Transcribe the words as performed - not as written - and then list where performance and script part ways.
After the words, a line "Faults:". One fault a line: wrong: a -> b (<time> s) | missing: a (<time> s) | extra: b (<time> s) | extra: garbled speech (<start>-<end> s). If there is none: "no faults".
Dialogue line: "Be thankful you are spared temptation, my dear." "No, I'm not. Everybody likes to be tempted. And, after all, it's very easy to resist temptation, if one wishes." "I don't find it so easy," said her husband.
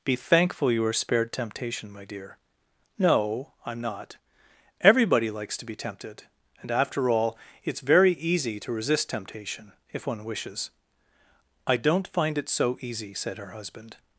"Be thankful you are spared temptation, my dear." "No, I'm not. Everybody likes to be tempted. And, after all, it's very easy to resist temptation, if one wishes." "I don't find it so easy," said her husband.
Faults:
no faults